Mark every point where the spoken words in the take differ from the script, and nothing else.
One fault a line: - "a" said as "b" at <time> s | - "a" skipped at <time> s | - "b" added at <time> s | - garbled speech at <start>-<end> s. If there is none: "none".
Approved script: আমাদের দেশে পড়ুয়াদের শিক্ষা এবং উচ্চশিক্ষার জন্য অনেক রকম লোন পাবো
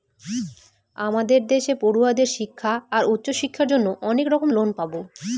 - "এবং" said as "আর" at 2.9 s